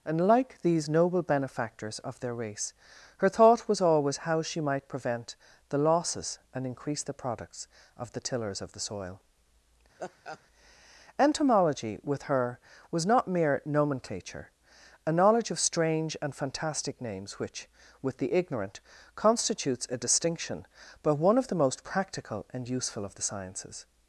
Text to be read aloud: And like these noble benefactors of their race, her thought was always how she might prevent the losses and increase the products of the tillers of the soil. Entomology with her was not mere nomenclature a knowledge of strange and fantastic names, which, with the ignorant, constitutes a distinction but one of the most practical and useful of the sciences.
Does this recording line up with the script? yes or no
yes